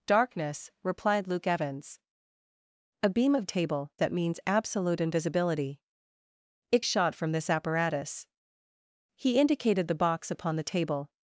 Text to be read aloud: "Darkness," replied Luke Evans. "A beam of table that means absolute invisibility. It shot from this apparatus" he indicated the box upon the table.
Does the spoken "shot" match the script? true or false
true